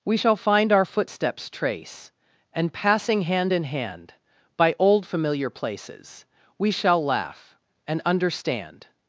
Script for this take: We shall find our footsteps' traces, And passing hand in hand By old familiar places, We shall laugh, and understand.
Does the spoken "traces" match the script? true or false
false